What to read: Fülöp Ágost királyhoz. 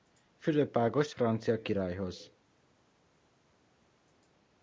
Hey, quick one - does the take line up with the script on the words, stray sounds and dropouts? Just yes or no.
no